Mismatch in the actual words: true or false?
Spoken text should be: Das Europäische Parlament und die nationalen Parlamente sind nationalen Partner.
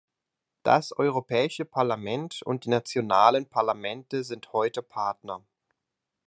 true